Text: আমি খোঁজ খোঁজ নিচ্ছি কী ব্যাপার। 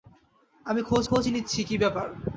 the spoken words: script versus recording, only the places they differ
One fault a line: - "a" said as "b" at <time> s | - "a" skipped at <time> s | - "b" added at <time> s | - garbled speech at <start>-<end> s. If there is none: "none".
none